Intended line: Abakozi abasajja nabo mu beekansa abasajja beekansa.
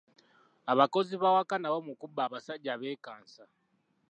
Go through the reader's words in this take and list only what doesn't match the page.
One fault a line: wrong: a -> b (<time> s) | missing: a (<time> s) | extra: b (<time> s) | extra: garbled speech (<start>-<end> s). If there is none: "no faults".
wrong: abasajja -> b'awaka (1.2 s)
wrong: beekansa -> kubba (2.0 s)